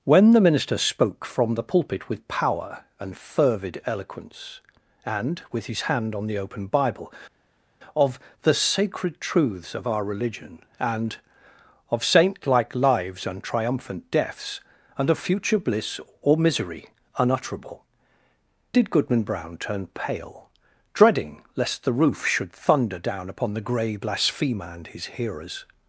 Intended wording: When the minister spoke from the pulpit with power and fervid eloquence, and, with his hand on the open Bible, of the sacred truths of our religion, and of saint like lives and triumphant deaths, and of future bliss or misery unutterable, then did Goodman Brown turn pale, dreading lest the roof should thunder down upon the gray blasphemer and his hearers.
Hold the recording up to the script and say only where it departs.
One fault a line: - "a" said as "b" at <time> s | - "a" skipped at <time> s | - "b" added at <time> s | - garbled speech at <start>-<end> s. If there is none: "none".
- "then" skipped at 17.8 s